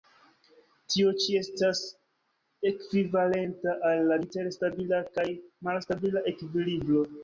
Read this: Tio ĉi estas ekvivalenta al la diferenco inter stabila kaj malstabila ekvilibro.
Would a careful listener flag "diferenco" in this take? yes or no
yes